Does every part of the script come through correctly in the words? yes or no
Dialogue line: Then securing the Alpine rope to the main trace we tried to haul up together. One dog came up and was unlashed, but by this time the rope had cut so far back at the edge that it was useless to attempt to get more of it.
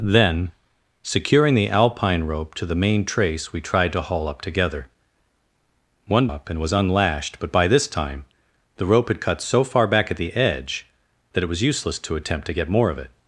no